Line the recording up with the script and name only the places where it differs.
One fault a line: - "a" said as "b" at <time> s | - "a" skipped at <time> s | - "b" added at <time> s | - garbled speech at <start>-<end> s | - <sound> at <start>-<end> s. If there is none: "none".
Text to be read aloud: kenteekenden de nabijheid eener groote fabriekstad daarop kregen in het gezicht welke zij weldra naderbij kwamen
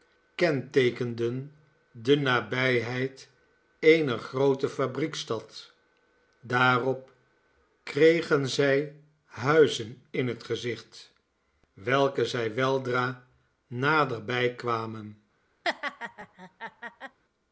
- "zij huizen" added at 8.5 s
- laugh at 15.6-17.2 s